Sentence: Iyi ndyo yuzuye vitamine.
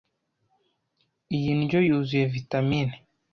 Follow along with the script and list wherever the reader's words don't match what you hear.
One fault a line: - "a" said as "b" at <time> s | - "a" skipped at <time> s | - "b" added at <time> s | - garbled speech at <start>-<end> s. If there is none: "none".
none